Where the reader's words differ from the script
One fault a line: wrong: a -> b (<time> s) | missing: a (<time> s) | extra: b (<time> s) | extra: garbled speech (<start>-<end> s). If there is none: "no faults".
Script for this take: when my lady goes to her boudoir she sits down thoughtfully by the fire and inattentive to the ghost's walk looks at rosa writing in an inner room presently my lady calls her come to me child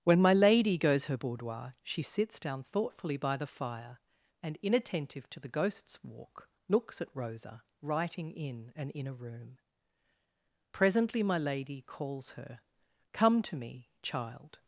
missing: to (1.1 s)